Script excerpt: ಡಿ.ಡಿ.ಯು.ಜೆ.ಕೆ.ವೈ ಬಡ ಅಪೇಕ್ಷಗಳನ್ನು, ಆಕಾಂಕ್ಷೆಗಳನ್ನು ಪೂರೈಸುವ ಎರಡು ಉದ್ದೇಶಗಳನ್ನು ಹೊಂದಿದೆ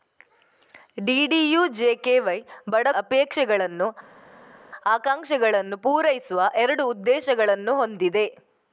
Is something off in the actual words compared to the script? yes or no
no